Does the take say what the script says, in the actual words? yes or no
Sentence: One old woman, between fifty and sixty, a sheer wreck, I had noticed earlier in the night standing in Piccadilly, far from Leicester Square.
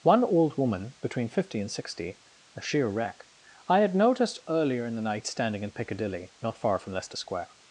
no